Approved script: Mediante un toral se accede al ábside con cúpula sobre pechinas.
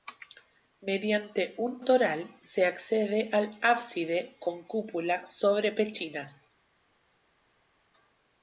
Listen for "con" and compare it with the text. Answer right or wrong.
right